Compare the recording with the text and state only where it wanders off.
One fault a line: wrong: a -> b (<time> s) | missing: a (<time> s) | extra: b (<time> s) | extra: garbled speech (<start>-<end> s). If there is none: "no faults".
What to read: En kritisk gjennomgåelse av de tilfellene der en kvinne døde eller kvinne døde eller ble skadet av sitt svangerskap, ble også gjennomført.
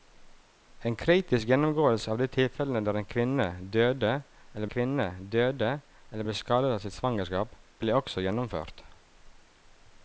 no faults